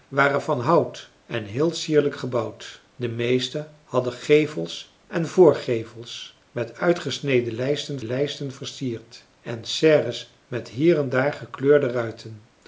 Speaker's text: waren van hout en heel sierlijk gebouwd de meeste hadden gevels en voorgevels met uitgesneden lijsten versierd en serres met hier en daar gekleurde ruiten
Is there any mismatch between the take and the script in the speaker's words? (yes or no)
yes